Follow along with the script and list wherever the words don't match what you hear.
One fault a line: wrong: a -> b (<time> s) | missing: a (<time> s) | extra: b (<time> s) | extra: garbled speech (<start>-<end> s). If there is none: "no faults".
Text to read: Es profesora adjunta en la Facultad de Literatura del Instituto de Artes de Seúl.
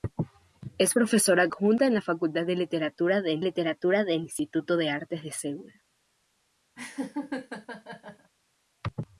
extra: Literatura del (3.4 s)